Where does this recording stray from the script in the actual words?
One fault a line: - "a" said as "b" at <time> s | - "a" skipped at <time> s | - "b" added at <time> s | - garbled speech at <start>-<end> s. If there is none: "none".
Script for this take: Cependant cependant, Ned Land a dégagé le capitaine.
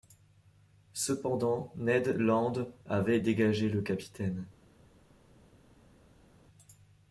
- "cependant" skipped at 1.7 s
- "a" said as "avait" at 2.9 s